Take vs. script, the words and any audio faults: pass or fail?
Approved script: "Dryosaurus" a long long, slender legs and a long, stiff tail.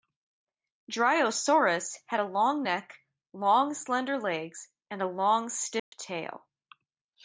fail